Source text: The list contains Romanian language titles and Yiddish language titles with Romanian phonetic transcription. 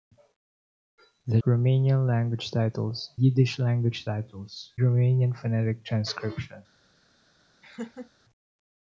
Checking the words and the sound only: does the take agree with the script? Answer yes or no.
no